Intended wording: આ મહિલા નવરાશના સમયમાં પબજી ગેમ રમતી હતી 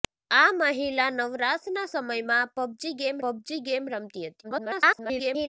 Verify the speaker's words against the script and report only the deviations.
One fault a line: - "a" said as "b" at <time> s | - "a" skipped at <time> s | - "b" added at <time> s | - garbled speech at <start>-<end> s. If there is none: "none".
- "પબજી ગેમ" added at 3.2 s
- garbled speech at 4.4-5.5 s